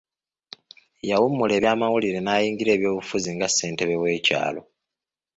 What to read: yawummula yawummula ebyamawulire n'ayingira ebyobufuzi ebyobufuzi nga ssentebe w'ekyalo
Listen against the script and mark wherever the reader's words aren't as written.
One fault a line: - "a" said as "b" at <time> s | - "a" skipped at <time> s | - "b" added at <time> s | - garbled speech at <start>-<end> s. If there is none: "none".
- "yawummula" skipped at 1.5 s
- "ebyobufuzi" skipped at 3.3 s